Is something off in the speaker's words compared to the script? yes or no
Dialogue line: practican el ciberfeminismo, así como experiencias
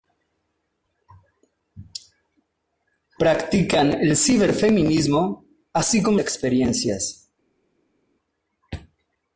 no